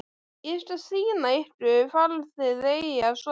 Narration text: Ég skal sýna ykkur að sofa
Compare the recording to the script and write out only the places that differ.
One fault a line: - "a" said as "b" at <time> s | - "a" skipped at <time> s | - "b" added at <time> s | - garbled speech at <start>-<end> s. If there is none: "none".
- "hvar þið eigið" added at 1.9 s